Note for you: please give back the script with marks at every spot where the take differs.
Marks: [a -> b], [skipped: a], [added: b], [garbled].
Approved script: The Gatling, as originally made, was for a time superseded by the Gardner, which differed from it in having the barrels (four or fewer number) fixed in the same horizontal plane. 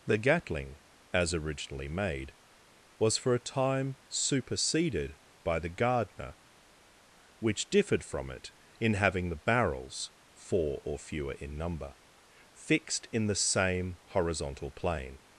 The Gatling, as originally made, was for a time superseded by the Gardner, which differed from it in having the barrels (four or fewer [added: in] number) fixed in the same horizontal plane.